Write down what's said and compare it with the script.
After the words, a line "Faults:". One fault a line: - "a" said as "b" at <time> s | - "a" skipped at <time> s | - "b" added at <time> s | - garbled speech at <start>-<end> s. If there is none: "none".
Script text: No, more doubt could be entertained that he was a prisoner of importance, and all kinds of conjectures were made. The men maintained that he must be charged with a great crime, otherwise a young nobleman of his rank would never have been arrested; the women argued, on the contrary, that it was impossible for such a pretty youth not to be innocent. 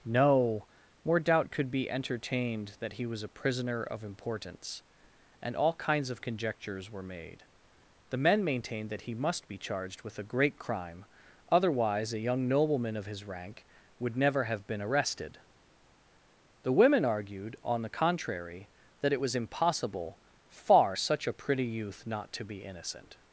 No, more doubt could be entertained that he was a prisoner of importance, and all kinds of conjectures were made. The men maintained that he must be charged with a great crime, otherwise a young nobleman of his rank would never have been arrested; the women argued, on the contrary, that it was impossible far such a pretty youth not to be innocent.
Faults:
- "for" said as "far" at 20.5 s